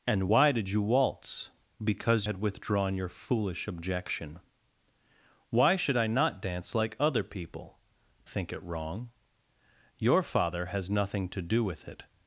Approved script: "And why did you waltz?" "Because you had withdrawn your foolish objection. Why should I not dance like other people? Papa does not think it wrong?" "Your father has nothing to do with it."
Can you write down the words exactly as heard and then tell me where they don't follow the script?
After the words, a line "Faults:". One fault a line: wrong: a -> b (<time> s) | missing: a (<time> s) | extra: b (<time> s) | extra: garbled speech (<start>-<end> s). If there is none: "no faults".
"And why did you waltz?" "Because had withdrawn your foolish objection. Why should I not dance like other people? Think it wrong?" "Your father has nothing to do with it."
Faults:
missing: you (2.3 s)
missing: Papa does not (7.8 s)